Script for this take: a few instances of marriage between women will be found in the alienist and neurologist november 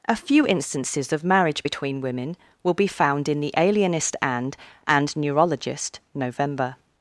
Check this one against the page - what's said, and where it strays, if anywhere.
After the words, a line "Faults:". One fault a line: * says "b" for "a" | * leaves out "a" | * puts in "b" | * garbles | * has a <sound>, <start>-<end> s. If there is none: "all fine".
a few instances of marriage between women will be found in the alienist and and neurologist november
Faults:
* puts in "and"